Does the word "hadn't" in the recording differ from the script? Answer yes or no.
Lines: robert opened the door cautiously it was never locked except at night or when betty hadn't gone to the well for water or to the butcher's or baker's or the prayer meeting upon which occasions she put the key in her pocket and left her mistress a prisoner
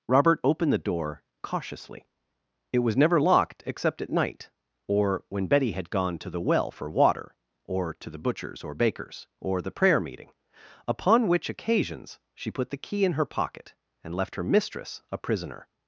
yes